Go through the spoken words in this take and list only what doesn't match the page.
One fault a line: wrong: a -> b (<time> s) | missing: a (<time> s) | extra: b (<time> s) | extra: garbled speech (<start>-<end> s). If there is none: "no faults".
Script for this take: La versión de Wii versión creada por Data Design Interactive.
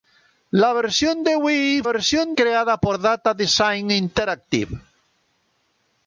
no faults